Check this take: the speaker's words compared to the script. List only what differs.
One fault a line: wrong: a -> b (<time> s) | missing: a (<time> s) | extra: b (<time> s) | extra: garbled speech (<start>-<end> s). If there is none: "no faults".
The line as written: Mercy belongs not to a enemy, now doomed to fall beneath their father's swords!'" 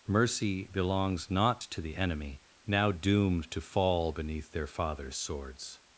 wrong: a -> the (1.8 s)